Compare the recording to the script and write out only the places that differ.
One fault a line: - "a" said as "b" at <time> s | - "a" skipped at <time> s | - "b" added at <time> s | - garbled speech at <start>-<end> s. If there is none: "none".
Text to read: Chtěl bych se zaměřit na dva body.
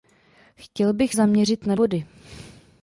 - "se" skipped at 1.1 s
- "dva" skipped at 1.7 s